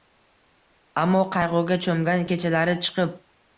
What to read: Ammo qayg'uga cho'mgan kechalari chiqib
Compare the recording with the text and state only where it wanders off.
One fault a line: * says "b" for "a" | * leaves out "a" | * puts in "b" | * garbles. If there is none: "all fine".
all fine